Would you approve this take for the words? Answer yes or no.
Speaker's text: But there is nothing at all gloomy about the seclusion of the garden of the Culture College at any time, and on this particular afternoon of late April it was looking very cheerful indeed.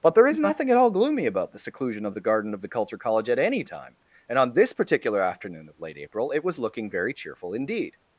yes